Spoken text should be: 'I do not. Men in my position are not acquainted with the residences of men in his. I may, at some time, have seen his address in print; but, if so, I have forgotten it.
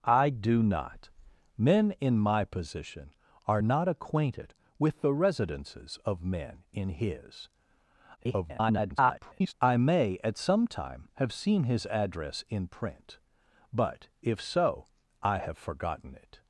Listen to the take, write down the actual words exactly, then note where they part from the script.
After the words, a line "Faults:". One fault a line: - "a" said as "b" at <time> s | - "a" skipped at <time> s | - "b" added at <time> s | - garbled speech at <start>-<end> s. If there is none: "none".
'I do not. Men in my position are not acquainted with the residences of men in his. [garbled] I may, at some time, have seen his address in print; but, if so, I have forgotten it.
Faults:
- garbled speech at 8.2-9.5 s